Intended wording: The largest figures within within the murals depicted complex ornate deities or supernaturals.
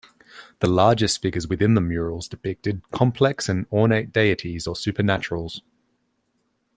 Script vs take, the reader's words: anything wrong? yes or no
yes